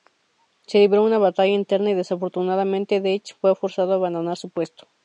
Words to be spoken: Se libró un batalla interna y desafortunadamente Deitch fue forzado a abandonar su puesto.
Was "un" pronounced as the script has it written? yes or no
no